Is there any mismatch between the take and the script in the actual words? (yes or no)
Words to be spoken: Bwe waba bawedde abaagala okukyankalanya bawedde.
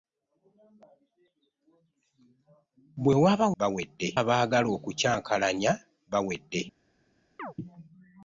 no